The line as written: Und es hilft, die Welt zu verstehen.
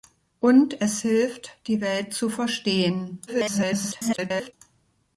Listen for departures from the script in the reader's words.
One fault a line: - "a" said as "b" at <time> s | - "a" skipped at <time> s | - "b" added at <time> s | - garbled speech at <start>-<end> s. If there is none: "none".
- garbled speech at 3.3-4.5 s